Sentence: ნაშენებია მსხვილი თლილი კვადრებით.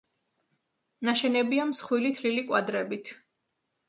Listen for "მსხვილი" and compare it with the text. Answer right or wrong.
right